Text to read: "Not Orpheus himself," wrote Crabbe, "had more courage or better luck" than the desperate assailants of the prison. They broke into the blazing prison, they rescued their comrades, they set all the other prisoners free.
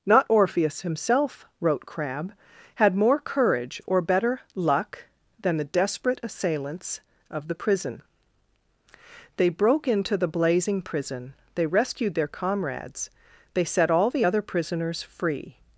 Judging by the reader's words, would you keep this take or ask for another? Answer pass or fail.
pass